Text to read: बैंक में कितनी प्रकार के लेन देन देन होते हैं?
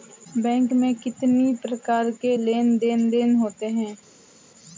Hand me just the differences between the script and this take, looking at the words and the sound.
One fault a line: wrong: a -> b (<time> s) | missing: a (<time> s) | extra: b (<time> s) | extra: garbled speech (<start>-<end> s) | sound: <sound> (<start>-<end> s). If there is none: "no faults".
no faults